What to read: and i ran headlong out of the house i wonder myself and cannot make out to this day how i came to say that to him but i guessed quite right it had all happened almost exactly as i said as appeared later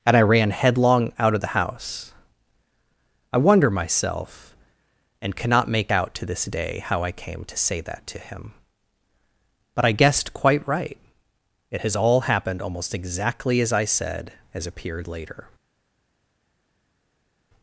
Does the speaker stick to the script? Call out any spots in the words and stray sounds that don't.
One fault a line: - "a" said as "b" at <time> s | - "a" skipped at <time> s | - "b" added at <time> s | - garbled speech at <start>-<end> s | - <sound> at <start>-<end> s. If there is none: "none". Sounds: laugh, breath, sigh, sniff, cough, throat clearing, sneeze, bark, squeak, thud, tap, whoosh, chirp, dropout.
- "had" said as "has" at 11.8 s